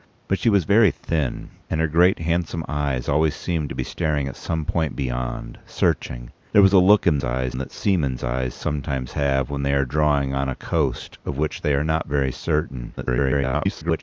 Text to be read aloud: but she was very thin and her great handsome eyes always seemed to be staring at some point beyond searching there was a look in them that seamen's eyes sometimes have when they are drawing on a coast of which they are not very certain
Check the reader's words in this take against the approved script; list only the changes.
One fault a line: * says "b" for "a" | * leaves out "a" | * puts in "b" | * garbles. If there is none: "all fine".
* says "eyes" for "them"
* garbles